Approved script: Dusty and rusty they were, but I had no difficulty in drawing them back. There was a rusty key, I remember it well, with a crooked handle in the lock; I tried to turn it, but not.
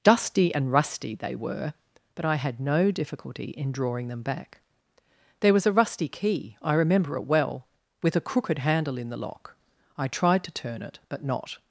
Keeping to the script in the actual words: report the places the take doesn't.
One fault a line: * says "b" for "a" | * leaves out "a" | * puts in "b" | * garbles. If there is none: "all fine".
all fine